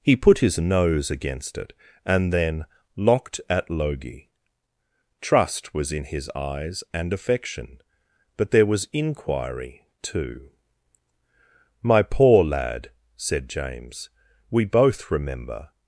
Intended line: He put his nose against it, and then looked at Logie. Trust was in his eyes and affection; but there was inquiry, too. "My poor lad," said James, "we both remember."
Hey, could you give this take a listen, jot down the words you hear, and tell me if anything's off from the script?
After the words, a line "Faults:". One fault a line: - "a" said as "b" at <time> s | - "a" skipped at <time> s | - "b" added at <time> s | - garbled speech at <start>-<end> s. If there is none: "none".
He put his nose against it, and then locked at Logie. Trust was in his eyes and affection; but there was inquiry, too. "My poor lad," said James, "we both remember."
Faults:
- "looked" said as "locked" at 2.9 s